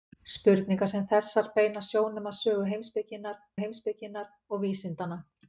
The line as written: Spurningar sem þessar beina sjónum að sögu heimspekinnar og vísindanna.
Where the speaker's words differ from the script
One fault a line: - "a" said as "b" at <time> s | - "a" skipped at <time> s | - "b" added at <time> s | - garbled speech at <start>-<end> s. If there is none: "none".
- "heimspekinnar" added at 3.6 s